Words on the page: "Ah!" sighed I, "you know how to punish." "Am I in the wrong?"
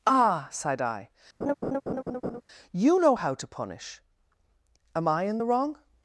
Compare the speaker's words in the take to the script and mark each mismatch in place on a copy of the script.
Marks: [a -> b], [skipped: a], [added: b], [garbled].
"Ah!" sighed I, "you know how to punish." "Am I in the wrong?"